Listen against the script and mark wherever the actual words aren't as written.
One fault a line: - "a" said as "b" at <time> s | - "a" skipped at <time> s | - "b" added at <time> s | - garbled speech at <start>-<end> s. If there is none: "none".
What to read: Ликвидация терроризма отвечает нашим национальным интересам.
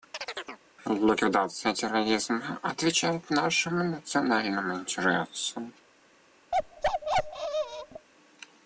none